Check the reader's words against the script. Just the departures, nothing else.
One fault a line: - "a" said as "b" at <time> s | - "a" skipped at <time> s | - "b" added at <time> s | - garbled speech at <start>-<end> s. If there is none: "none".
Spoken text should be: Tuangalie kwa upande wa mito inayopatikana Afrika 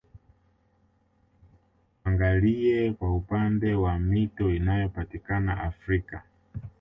none